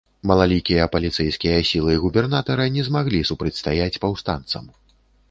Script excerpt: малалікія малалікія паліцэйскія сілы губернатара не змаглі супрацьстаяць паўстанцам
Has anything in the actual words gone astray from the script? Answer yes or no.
yes